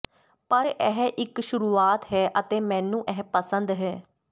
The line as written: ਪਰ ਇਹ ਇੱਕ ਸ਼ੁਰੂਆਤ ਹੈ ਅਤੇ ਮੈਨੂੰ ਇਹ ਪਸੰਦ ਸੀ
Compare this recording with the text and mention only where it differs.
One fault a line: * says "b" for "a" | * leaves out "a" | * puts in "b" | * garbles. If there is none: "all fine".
* says "ਹੈ" for "ਸੀ"